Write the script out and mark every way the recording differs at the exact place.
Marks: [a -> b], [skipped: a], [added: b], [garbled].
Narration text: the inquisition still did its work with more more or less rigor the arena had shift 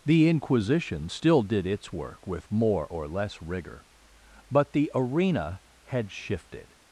the inquisition still did its work with more [skipped: more] or less rigor [added: but] the arena had [shift -> shifted]